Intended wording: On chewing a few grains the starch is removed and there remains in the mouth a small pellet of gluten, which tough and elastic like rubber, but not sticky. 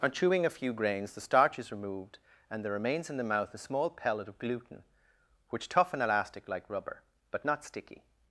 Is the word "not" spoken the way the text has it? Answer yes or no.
yes